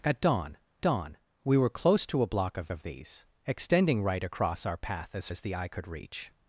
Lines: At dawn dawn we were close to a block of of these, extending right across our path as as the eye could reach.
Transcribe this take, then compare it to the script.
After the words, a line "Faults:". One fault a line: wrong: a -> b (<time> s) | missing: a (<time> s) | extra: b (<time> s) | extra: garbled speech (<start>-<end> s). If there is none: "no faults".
At dawn dawn we were close to a block of of these, extending right across our path as as the eye could reach.
Faults:
no faults